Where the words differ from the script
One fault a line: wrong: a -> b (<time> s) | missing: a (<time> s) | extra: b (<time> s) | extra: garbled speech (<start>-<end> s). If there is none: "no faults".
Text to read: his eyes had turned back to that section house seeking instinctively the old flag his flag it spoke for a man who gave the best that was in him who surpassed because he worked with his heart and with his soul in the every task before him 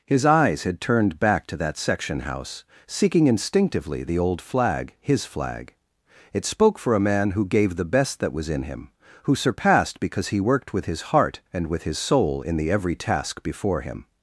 no faults